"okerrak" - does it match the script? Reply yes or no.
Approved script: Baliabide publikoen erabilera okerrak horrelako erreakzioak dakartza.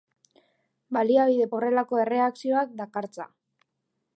no